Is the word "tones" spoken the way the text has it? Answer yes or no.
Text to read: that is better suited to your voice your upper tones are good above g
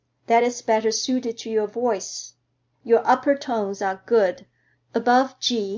yes